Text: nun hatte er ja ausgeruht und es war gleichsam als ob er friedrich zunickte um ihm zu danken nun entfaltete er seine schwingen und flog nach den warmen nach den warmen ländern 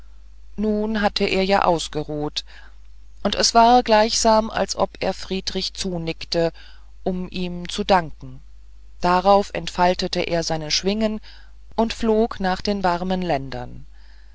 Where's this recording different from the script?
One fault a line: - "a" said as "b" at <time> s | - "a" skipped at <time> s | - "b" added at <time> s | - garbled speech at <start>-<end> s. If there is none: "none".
- "nun" said as "darauf" at 9.0 s
- "nach den warmen" skipped at 13.2 s